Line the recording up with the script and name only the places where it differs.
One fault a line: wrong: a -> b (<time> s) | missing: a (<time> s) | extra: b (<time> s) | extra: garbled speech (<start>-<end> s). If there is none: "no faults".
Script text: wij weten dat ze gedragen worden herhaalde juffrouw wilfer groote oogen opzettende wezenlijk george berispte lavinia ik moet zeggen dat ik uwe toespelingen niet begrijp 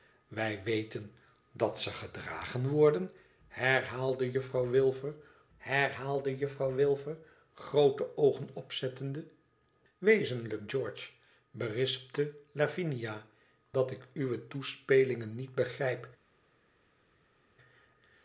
extra: herhaalde juffrouw wilfer (5.6 s)
missing: ik moet zeggen (13.3 s)